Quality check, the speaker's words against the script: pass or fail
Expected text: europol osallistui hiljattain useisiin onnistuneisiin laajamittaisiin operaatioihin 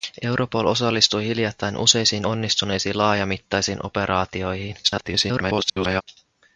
fail